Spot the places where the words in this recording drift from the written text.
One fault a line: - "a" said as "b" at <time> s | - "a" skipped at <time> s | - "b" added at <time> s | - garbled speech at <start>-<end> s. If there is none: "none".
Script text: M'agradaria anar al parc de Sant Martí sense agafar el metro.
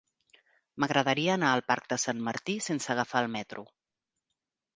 none